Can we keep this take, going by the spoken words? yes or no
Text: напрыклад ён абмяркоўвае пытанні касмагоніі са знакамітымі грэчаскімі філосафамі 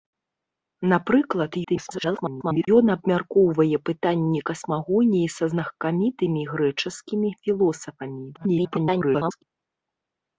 no